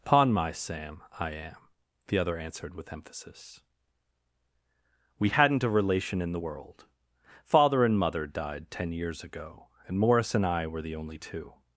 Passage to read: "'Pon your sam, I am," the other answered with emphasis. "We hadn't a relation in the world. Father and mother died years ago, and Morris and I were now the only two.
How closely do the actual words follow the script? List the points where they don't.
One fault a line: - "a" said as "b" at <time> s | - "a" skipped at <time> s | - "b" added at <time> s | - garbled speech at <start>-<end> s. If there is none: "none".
- "your" said as "my" at 0.3 s
- "ten" added at 8.7 s
- "now" skipped at 10.8 s